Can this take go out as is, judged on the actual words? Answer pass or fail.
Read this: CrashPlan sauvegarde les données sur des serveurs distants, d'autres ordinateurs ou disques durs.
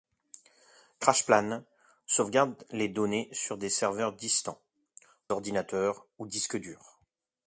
fail